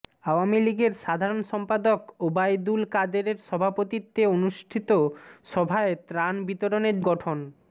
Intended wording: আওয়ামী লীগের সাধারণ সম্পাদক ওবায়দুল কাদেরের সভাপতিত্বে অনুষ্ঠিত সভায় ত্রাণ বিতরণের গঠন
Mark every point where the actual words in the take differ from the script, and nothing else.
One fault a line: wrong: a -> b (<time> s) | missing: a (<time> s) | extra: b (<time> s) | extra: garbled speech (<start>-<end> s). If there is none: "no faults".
no faults